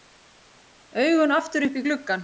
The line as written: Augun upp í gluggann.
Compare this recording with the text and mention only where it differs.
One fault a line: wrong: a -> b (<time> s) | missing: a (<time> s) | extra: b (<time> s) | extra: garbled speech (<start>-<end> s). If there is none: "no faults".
extra: aftur (1.3 s)